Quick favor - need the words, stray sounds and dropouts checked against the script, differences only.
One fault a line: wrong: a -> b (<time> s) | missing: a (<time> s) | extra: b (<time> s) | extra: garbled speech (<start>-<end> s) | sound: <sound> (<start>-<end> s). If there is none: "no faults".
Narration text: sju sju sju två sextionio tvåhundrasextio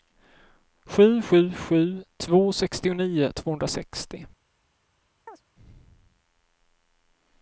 sound: chirp (5.3-5.4 s)